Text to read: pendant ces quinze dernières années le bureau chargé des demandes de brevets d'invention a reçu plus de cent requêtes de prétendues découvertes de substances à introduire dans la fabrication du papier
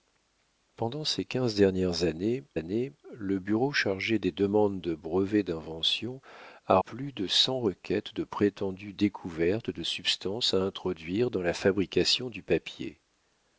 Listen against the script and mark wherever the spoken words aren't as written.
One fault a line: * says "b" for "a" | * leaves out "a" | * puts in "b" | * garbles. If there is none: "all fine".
* puts in "années"
* leaves out "reçu"